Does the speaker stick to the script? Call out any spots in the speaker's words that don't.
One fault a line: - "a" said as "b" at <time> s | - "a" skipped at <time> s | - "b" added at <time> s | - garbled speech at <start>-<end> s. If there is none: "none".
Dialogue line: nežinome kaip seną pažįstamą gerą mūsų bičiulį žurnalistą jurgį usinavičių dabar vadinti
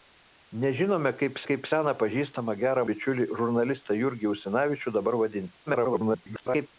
- "kaip" added at 1.5 s
- "mūsų" skipped at 2.8 s
- garbled speech at 5.7-6.7 s